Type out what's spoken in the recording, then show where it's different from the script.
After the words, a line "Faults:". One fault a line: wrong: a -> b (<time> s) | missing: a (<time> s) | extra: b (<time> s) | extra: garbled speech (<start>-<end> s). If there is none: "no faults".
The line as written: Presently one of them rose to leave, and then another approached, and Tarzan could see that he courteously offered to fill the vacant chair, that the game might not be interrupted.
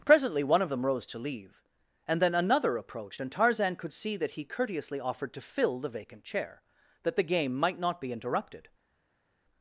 Presently one of them rose to leave, and then another approached, and Tarzan could see that he courteously offered to fill the vacant chair, that the game might not be interrupted.
Faults:
no faults